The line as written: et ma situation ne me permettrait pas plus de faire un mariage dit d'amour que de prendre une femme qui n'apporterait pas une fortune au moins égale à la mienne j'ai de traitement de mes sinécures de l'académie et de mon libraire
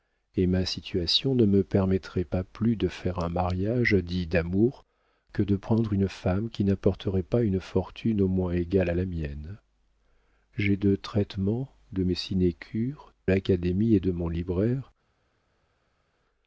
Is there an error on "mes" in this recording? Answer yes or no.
no